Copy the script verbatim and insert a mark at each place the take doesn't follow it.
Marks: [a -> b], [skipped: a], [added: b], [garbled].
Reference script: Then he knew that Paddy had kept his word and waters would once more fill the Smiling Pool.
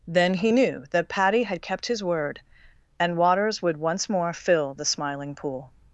Then he knew that Paddy had kept his word and waters would once more fill the Smiling Pool.